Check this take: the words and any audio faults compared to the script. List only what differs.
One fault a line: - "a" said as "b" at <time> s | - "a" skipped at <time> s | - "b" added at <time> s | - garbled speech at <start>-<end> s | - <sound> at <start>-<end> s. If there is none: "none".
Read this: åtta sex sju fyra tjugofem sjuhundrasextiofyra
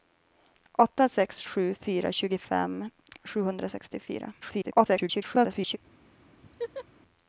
- garbled speech at 4.4-5.8 s
- laugh at 6.4-6.8 s